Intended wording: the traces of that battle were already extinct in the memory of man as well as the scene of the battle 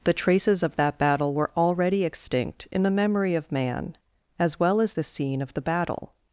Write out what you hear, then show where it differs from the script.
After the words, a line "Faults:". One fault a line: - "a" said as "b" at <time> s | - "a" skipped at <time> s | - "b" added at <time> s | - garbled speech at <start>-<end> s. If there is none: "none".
the traces of that battle were already extinct in the memory of man as well as the scene of the battle
Faults:
none